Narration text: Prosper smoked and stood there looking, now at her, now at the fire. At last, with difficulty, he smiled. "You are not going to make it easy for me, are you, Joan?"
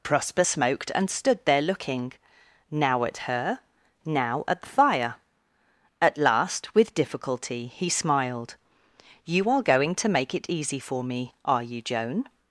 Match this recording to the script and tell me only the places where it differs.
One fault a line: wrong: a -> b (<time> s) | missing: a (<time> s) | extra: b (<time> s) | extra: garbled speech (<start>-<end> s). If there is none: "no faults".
missing: not (9.6 s)